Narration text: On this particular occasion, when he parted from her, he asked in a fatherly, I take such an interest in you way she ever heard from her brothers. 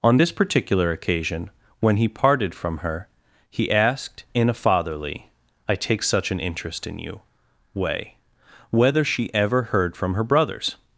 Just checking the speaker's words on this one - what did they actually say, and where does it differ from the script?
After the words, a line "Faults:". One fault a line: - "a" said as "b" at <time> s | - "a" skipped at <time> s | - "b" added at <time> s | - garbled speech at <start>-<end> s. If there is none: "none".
On this particular occasion, when he parted from her, he asked in a fatherly, I take such an interest in you way whether she ever heard from her brothers.
Faults:
- "whether" added at 8.7 s